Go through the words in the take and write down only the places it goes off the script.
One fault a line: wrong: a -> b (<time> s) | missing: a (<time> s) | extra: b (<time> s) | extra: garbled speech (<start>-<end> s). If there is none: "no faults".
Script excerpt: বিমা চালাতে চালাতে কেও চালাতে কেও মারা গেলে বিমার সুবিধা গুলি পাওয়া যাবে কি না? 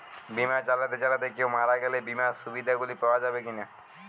missing: চালাতে কেও (1.5 s)